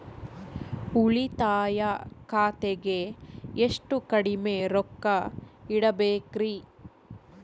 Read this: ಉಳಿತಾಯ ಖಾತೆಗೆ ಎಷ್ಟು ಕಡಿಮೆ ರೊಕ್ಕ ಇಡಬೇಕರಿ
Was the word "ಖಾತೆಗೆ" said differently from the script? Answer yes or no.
no